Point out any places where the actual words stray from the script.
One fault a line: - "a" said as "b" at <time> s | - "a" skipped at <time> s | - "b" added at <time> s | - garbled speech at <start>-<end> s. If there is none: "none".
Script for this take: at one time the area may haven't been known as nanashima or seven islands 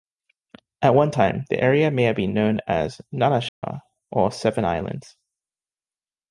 - "haven't" said as "have" at 2.0 s